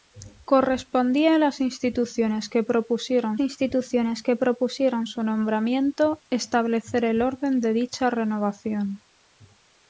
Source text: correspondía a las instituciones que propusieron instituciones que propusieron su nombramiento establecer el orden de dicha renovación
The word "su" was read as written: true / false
true